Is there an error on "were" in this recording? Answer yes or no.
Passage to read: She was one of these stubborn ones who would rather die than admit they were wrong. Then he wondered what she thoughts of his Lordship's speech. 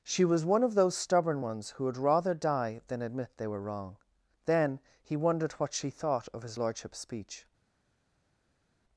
no